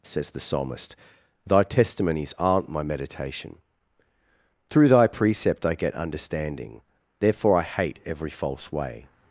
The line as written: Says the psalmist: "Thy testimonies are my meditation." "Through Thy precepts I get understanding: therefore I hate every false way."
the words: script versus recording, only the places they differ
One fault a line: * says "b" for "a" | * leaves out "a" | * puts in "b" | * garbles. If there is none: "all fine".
* says "aren't" for "are"
* says "precept" for "precepts"